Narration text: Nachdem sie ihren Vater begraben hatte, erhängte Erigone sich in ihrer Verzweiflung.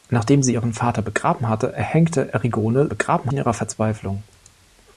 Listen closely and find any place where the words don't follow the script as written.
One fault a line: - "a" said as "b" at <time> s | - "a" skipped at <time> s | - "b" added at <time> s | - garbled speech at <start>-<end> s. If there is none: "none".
- "sich" said as "begraben" at 2.8 s